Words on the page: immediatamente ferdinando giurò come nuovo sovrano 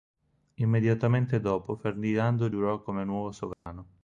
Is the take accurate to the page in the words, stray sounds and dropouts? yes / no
no